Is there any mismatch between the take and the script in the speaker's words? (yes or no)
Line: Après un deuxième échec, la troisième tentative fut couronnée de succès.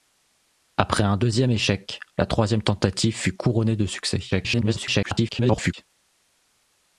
yes